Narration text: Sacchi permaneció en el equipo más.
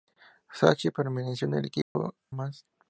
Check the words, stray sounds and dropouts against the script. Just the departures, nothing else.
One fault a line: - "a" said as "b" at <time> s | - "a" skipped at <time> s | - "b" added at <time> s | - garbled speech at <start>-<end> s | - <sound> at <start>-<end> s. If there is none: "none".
- dropout at 1.8-2.0 s